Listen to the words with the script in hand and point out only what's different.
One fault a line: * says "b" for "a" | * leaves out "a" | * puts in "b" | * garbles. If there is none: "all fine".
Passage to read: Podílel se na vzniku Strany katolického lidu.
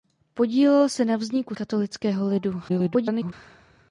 * leaves out "Strany"
* garbles